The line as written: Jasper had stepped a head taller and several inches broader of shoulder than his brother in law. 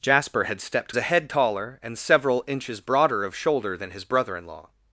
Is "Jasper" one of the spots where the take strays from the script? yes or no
no